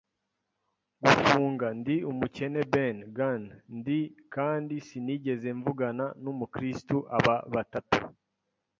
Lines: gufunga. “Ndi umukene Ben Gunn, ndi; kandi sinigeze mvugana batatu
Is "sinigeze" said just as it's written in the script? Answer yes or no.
yes